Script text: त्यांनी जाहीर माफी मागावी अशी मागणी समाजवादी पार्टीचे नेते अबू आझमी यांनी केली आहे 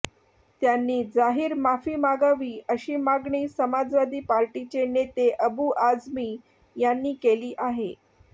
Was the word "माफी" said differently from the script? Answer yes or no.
no